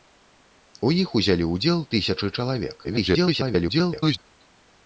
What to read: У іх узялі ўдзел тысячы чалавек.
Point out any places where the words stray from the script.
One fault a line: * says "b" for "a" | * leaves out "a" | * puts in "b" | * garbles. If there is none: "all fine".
* garbles